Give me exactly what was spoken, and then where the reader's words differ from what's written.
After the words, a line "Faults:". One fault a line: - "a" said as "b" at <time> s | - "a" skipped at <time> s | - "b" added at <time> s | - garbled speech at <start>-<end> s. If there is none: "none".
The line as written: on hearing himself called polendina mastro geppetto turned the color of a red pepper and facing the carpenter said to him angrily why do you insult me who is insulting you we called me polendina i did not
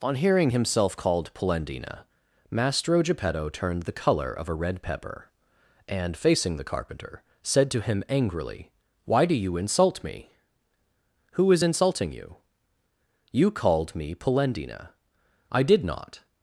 on hearing himself called polendina mastro geppetto turned the color of a red pepper and facing the carpenter said to him angrily why do you insult me who is insulting you you called me polendina i did not
Faults:
- "we" said as "you" at 13.3 s